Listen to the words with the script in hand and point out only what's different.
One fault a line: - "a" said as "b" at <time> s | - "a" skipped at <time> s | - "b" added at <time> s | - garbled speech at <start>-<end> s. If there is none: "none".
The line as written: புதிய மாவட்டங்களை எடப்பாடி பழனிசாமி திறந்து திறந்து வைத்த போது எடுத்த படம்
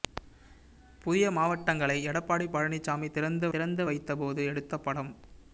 none